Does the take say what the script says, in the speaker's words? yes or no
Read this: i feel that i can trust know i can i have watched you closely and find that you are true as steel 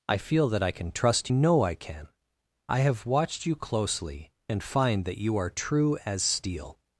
yes